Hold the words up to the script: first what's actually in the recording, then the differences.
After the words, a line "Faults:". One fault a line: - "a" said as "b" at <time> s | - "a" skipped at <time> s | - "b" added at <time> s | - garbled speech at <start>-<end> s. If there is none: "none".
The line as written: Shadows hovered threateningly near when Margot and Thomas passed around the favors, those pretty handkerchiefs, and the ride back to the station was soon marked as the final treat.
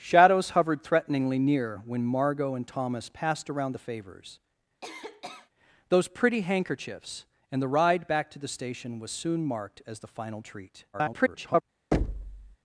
Shadows hovered threateningly near when Margot and Thomas passed around the favors, those pretty handkerchiefs, and the ride back to the station was soon marked as the final treat. [garbled]
Faults:
- garbled speech at 10.9-11.6 s